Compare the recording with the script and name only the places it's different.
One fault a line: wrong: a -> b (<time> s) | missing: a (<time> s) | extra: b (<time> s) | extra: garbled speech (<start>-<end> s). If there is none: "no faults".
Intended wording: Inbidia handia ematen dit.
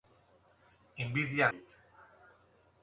missing: handia ematen (1.5 s)